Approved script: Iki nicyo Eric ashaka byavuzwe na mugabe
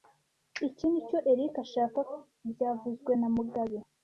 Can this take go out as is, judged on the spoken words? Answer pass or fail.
pass